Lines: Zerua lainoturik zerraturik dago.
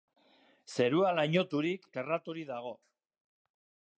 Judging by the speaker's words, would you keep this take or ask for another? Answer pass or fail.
pass